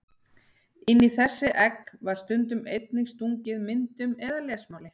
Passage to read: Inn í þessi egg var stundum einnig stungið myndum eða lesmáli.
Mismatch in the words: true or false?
false